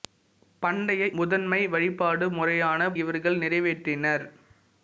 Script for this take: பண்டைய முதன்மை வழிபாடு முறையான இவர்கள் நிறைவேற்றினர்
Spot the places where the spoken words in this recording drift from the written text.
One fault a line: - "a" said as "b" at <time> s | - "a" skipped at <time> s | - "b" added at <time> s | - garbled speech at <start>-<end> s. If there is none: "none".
none